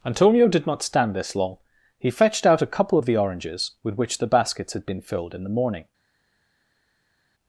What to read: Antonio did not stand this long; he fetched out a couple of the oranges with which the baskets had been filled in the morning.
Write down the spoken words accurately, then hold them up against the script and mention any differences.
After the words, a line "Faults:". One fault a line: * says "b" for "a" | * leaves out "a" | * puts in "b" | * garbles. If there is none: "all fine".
Antonio did not stand this long; he fetched out a couple of the oranges with which the baskets had been filled in the morning.
Faults:
all fine